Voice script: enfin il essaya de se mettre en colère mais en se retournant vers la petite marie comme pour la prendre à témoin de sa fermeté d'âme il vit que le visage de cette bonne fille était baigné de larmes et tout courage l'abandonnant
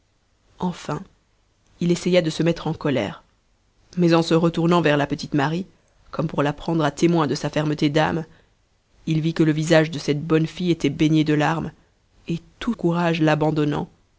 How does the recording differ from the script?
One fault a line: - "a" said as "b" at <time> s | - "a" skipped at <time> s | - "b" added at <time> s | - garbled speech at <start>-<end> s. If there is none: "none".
none